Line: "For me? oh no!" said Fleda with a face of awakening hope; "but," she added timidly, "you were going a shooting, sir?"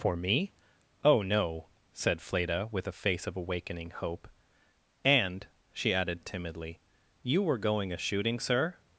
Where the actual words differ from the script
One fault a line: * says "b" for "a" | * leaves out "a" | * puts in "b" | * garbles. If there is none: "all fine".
* says "and" for "but"